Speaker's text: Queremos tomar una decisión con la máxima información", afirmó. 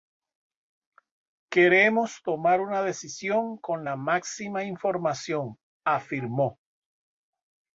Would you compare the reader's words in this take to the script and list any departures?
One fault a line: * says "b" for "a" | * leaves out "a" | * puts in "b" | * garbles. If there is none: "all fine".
all fine